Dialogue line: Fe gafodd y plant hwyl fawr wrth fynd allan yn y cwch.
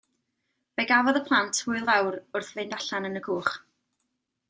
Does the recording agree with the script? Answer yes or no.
yes